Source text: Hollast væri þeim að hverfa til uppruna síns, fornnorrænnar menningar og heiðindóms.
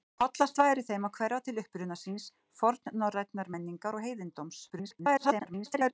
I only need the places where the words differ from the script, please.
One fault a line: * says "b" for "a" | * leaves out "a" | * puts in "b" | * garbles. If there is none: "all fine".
* garbles